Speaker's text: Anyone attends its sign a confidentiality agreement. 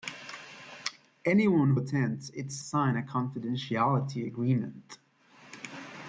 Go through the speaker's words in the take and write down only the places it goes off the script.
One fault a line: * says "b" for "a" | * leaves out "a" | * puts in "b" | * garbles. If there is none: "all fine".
all fine